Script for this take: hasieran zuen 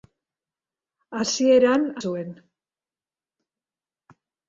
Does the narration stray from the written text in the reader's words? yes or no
no